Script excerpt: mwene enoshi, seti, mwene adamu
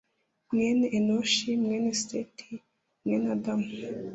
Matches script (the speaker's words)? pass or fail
fail